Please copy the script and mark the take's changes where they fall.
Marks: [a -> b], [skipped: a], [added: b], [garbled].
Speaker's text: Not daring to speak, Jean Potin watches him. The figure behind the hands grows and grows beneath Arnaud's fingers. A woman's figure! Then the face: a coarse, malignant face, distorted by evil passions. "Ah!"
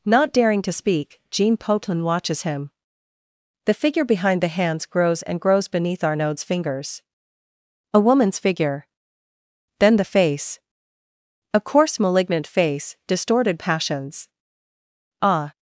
Not daring to speak, Jean Potin watches him. The figure behind the hands grows and grows beneath Arnaud's fingers. A woman's figure! Then the face: a coarse, malignant face, distorted [skipped: by evil] passions. "Ah!"